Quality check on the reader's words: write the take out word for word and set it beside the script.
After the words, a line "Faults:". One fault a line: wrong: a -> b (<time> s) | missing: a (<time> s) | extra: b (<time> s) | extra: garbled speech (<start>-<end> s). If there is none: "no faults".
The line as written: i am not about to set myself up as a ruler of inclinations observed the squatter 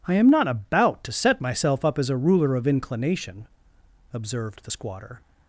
i am not about to set myself up as a ruler of inclination observed the squatter
Faults:
wrong: inclinations -> inclination (2.7 s)